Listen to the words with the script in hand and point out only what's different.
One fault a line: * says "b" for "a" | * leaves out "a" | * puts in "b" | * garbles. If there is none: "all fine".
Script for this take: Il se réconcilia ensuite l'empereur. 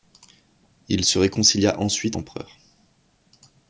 all fine